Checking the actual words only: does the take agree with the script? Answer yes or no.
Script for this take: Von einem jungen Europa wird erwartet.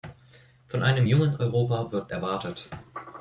yes